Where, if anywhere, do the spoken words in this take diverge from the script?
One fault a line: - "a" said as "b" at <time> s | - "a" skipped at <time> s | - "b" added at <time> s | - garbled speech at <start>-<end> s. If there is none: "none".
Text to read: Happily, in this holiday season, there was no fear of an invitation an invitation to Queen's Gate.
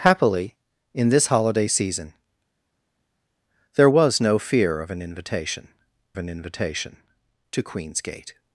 none